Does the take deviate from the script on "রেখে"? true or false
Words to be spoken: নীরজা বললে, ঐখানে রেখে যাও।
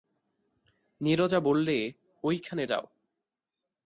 true